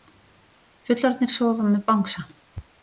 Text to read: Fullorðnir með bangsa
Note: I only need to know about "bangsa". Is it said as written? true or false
true